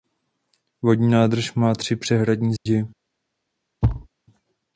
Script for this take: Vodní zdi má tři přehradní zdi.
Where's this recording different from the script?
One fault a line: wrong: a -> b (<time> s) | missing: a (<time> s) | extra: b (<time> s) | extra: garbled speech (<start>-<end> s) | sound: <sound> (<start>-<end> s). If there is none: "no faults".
wrong: zdi -> nádrž (1.1 s)
sound: dropout (2.6-2.7 s)
sound: thud (3.8-4.1 s)